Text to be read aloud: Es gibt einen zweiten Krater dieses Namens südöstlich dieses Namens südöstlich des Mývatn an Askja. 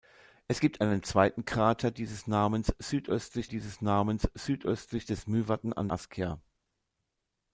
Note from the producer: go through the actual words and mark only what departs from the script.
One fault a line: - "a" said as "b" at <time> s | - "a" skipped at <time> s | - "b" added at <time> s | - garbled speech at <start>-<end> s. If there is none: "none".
none